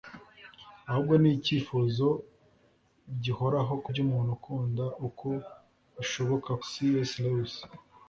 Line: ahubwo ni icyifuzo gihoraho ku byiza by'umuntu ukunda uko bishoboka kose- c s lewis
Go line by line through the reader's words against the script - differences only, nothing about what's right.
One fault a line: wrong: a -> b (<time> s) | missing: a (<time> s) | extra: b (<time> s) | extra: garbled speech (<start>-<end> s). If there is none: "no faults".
missing: byiza (3.9 s)
missing: kose (6.5 s)